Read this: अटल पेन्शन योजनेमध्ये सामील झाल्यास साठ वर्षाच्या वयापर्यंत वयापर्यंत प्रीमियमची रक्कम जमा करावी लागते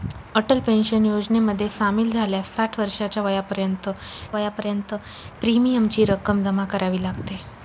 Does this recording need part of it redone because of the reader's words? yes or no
no